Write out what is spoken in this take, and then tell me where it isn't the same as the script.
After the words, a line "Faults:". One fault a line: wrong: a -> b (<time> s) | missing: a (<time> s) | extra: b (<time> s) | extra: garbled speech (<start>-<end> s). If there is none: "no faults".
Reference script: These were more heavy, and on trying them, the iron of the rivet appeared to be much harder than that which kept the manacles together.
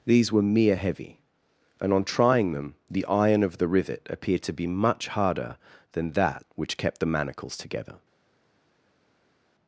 These were mere heavy, and on trying them, the iron of the rivet appeared to be much harder than that which kept the manacles together.
Faults:
wrong: more -> mere (0.4 s)